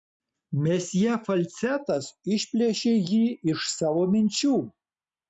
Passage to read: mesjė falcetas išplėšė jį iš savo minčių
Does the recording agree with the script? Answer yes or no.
yes